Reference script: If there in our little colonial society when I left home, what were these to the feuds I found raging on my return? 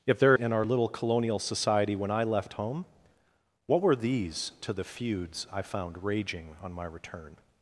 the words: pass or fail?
pass